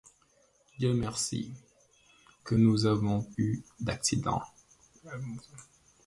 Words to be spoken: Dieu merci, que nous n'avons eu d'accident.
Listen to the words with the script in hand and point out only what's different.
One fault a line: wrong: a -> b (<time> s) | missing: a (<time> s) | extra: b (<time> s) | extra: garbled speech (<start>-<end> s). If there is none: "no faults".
no faults